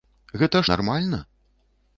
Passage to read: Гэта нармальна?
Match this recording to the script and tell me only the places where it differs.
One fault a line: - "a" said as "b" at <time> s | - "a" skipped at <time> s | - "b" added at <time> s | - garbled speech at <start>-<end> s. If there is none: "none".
none